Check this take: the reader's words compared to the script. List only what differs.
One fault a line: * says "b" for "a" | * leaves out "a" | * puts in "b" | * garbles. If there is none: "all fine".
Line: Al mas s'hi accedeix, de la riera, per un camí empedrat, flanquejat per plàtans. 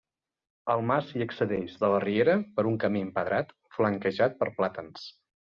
all fine